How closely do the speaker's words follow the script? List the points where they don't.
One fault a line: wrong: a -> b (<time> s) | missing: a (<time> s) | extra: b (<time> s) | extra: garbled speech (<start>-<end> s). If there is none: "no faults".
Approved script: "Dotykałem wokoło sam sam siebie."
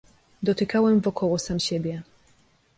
missing: sam (1.6 s)